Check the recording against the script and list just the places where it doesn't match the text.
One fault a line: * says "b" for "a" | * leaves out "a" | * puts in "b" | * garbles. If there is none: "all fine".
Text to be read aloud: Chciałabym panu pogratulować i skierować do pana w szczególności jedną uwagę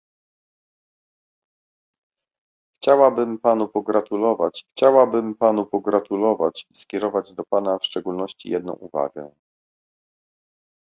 * puts in "chciałabym panu pogratulować"